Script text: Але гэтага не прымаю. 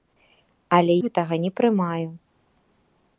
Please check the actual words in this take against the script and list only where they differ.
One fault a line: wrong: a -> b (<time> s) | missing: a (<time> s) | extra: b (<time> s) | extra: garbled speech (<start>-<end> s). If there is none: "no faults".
no faults